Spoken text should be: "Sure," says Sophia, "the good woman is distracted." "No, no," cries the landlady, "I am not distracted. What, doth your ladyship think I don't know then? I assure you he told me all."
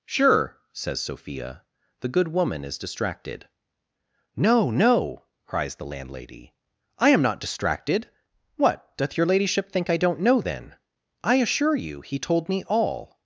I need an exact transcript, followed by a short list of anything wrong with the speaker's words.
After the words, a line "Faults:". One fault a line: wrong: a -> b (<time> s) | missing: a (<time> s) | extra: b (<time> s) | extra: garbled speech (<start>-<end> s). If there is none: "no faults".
"Sure," says Sophia, "the good woman is distracted." "No, no," cries the landlady, "I am not distracted. What, doth your ladyship think I don't know then? I assure you he told me all."
Faults:
no faults